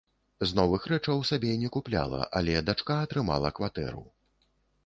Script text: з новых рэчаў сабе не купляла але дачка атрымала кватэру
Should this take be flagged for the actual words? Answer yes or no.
no